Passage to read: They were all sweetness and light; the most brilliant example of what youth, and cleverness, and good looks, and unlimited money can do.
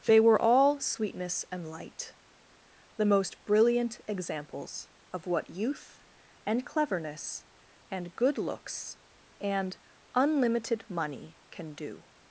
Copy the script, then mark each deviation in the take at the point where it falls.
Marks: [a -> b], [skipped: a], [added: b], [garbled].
They were all sweetness and light; the most brilliant [example -> examples] of what youth, and cleverness, and good looks, and unlimited money can do.